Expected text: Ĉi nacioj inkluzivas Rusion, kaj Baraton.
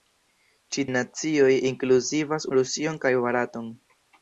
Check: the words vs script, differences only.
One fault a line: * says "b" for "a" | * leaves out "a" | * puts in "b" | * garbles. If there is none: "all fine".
all fine